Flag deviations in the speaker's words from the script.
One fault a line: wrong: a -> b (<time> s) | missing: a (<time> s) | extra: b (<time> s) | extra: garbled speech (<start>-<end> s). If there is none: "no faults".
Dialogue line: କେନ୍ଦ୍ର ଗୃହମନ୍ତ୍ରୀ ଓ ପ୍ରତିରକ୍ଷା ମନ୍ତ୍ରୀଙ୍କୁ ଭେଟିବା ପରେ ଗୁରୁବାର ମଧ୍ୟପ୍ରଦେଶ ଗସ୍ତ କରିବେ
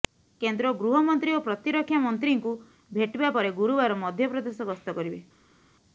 no faults